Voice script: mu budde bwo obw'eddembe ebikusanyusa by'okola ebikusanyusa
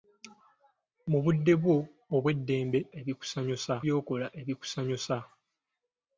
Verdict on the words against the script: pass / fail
pass